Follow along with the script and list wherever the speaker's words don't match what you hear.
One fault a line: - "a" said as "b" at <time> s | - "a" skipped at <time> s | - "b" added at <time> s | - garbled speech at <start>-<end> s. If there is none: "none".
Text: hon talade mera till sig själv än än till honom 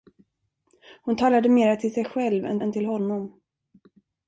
none